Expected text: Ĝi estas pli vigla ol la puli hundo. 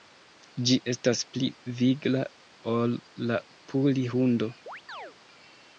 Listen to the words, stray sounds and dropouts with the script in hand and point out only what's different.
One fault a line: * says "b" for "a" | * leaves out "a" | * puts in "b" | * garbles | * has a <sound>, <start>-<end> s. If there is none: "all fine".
* has a chirp, 4.7-5.2 s